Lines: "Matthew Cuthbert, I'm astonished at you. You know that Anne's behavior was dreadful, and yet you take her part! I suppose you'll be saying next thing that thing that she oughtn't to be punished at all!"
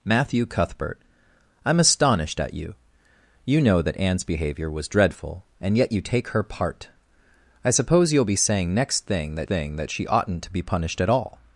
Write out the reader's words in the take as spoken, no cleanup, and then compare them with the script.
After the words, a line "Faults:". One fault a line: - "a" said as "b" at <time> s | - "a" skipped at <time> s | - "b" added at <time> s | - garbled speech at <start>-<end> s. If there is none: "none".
"Matthew Cuthbert, I'm astonished at you. You know that Anne's behavior was dreadful, and yet you take her part! I suppose you'll be saying next thing that thing that she oughtn't to be punished at all!"
Faults:
none